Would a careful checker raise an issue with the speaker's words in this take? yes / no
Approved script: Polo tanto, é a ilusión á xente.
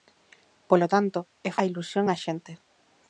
no